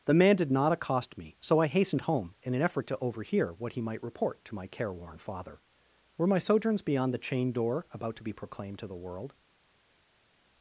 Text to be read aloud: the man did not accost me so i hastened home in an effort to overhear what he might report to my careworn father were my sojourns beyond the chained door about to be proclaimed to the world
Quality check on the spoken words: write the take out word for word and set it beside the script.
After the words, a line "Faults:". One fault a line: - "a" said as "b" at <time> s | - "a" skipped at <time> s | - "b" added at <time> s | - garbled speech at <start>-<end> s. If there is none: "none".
the man did not accost me so i hastened home in an effort to overhear what he might report to my careworn father were my sojourns beyond the chained door about to be proclaimed to the world
Faults:
none